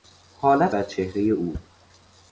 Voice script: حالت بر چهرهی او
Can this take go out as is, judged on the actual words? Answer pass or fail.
pass